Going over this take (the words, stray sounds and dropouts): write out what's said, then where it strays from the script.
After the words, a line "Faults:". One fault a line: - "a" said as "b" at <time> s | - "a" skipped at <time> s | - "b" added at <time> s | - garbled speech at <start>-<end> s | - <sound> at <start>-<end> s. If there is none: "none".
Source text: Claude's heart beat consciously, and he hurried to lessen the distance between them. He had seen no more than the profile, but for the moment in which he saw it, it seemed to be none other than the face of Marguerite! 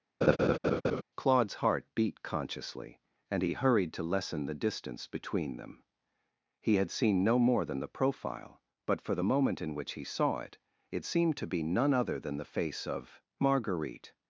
Claude's heart beat consciously, and he hurried to lessen the distance between them. He had seen no more than the profile, but for the moment in which he saw it, it seemed to be none other than the face of Marguerite!
Faults:
- laugh at 0.2-1.0 s